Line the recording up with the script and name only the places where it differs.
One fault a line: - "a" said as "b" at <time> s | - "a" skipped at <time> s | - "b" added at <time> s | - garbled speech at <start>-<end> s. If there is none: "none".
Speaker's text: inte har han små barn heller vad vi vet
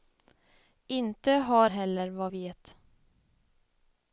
- "han små barn" skipped at 1.7 s
- "vi" skipped at 2.3 s